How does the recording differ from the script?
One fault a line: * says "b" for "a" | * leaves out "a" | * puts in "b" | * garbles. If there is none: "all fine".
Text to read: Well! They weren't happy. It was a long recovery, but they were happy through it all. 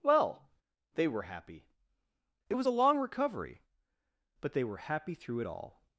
* says "were" for "weren't"